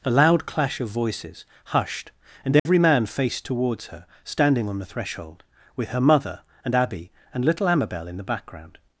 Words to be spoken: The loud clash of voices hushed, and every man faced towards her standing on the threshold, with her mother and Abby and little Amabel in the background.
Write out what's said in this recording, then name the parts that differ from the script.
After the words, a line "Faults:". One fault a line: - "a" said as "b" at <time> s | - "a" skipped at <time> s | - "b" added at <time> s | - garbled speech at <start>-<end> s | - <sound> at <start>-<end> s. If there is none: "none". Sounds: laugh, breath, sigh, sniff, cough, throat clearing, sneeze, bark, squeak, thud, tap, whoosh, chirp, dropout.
A loud clash of voices hushed, and every man faced towards her standing on the threshold, with her mother and Abby and little Amabel in the background.
Faults:
- "The" said as "A" at 0.0 s
- dropout at 2.6-2.7 s